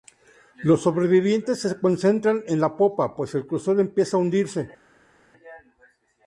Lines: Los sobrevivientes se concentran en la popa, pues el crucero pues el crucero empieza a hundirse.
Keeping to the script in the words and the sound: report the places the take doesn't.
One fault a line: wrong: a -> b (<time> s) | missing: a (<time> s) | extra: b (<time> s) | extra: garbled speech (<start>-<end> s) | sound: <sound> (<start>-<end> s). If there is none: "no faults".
missing: pues el crucero (3.8 s)